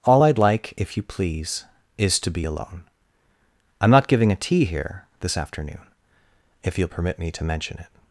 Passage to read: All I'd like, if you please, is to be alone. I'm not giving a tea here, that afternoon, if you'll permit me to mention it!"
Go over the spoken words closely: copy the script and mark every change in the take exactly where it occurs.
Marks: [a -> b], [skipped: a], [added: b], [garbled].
All I'd like, if you please, is to be alone. I'm not giving a tea here, [that -> this] afternoon, if you'll permit me to mention it!"